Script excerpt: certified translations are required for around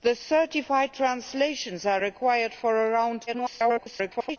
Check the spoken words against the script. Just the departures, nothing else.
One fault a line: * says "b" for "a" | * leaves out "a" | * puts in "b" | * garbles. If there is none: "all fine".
* garbles